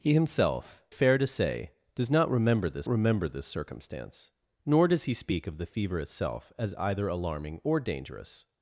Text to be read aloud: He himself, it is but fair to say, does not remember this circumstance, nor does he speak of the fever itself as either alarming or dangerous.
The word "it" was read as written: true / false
false